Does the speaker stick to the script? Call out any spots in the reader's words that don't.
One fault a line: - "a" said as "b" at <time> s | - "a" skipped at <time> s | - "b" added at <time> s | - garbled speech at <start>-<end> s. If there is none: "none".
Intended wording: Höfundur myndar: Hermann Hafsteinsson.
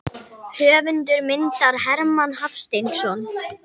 none